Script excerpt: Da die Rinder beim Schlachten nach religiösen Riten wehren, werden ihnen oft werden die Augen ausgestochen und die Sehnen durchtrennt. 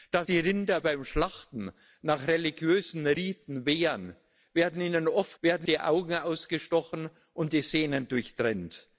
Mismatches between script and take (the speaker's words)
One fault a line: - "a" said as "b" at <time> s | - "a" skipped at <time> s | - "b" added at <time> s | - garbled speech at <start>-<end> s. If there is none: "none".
none